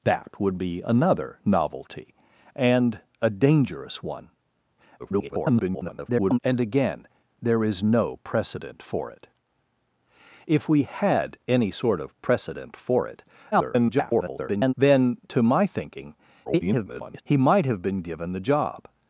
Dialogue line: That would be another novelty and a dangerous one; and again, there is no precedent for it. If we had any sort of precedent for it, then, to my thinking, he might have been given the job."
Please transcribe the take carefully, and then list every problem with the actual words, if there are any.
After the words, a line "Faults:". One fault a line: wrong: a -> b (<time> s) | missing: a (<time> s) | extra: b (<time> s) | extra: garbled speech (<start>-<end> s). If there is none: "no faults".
That would be another novelty and a dangerous one; [garbled] and again, there is no precedent for it. If we had any sort of precedent for it, [garbled] then, to my thinking, [garbled] he might have been given the job."
Faults:
extra: garbled speech (5.0-6.4 s)
extra: garbled speech (13.5-14.7 s)
extra: garbled speech (16.4-17.2 s)